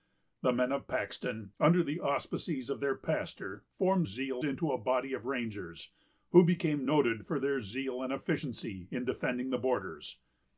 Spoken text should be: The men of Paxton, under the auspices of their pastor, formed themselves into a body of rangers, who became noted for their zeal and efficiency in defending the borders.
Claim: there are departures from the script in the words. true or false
true